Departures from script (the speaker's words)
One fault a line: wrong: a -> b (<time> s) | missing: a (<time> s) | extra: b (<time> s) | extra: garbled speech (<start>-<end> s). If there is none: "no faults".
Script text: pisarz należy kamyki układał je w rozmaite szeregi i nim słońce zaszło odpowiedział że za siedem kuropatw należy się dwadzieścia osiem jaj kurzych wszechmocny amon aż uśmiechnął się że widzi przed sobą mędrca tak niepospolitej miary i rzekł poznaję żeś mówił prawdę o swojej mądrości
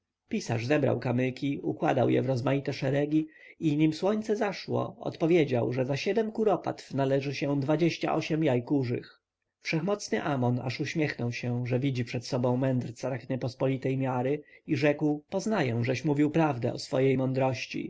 wrong: należy -> zebrał (0.7 s)